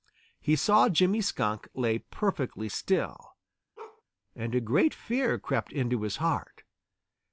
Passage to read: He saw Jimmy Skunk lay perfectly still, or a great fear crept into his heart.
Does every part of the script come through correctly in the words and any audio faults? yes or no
no